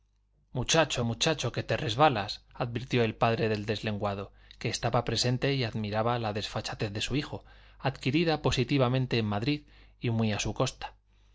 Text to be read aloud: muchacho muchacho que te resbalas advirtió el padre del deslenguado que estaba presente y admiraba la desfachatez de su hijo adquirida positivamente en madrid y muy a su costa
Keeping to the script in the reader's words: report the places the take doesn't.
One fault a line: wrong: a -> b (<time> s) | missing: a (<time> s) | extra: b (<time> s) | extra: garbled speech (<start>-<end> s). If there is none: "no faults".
no faults